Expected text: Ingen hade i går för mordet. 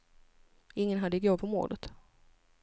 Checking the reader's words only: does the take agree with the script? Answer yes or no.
yes